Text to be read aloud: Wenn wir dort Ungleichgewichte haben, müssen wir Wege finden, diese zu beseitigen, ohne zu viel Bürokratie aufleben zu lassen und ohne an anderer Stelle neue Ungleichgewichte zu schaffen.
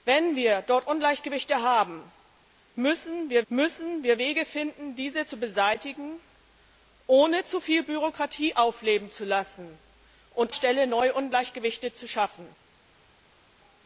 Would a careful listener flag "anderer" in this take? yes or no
yes